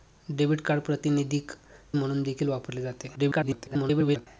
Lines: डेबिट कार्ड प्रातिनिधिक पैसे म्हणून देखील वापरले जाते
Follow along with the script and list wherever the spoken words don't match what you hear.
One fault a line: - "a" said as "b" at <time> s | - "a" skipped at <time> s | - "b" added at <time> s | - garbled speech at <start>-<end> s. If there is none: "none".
- "पैसे" skipped at 1.5 s
- garbled speech at 3.2-4.3 s